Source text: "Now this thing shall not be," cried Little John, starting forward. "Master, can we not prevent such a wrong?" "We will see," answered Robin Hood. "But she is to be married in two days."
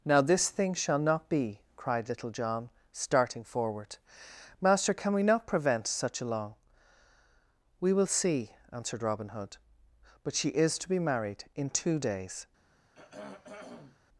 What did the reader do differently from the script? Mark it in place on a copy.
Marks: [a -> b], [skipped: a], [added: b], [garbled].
"Now this thing shall not be," cried Little John, starting forward. "Master, can we not prevent such a [wrong?" -> long] "We will see," answered Robin Hood. "But she is to be married in two days."